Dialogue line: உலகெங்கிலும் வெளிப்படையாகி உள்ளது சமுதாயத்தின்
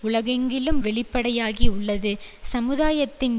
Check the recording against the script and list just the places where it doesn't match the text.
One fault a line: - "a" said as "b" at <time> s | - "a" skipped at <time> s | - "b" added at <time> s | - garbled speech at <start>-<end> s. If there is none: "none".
none